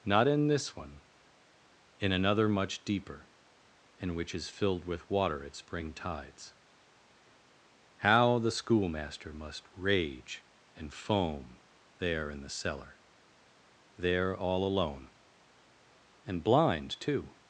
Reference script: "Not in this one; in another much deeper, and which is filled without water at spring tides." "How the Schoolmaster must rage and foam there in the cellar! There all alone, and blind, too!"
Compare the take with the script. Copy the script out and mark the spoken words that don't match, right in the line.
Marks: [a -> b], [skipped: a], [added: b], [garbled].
"Not in this one; in another much deeper, and which is filled [without -> with] water at spring tides." "How the Schoolmaster must rage and foam there in the cellar! There all alone, and blind, too!"